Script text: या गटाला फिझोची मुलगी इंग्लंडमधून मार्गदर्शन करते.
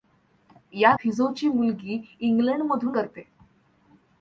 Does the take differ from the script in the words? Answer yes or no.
yes